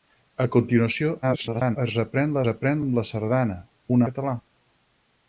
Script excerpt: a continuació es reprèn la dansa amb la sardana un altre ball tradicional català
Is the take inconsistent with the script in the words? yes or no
yes